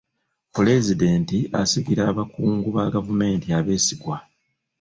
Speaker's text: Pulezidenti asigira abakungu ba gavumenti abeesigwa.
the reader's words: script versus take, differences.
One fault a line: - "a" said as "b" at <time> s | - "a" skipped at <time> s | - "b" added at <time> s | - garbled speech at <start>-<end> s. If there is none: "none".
none